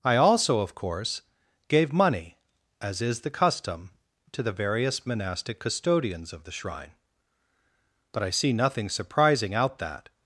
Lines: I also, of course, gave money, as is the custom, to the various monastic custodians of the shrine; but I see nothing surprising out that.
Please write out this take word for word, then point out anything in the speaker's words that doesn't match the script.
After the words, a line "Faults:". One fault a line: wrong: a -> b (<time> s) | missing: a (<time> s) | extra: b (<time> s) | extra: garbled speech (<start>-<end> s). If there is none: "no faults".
I also, of course, gave money, as is the custom, to the various monastic custodians of the shrine; but I see nothing surprising out that.
Faults:
no faults